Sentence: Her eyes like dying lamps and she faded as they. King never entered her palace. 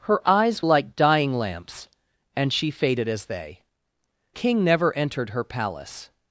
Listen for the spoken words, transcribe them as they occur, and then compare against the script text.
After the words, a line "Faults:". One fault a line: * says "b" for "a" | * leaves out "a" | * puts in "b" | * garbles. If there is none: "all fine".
Her eyes like dying lamps and she faded as they. King never entered her palace.
Faults:
all fine